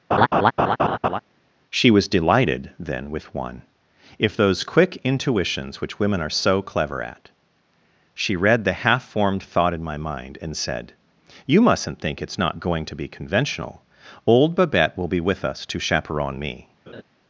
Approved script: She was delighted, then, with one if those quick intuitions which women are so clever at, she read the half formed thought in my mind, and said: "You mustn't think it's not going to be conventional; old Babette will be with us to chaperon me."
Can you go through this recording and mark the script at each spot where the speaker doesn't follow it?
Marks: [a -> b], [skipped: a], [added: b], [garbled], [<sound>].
[laugh] She was delighted, then, with one if those quick intuitions which women are so clever at, she read the half formed thought in my mind, and said: "You mustn't think it's not going to be conventional; old Babette will be with us to chaperon me." [laugh]